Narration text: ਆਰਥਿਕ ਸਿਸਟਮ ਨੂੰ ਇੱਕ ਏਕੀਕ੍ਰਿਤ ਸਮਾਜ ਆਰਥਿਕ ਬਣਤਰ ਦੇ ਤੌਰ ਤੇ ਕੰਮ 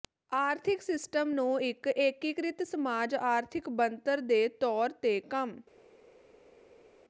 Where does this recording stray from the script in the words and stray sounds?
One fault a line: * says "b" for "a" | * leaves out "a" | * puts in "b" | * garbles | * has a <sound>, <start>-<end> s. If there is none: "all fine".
all fine